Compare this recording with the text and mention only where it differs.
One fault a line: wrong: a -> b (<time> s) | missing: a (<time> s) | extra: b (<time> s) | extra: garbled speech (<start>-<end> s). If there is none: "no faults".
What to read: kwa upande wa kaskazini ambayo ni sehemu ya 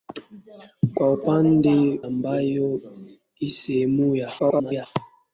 missing: wa kaskazini (2.0 s)
extra: garbled speech (4.4-4.9 s)